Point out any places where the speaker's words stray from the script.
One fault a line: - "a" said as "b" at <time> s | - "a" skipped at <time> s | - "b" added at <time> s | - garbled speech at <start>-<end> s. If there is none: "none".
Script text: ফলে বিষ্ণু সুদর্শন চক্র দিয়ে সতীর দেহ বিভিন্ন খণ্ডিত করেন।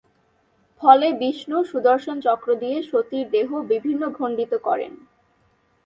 none